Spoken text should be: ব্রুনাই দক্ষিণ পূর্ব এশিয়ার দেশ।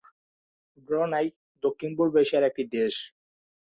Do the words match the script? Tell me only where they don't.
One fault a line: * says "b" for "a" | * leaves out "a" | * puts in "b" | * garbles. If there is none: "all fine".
* puts in "একটি"